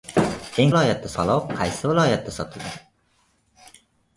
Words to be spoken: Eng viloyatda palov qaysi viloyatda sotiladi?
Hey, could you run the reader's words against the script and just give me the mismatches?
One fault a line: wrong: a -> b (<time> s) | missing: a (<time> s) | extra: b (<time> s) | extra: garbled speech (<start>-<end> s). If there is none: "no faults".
no faults